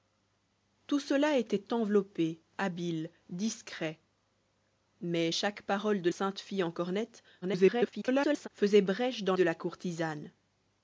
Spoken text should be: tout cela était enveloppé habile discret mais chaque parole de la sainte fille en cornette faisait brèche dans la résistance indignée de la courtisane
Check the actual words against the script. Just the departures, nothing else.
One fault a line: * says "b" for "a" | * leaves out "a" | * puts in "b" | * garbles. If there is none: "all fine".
* leaves out "la"
* garbles
* leaves out "la résistance indignée"